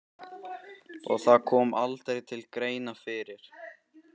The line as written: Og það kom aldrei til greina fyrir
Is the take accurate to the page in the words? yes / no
yes